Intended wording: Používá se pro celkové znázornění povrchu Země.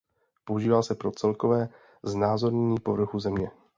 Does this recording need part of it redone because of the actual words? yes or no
no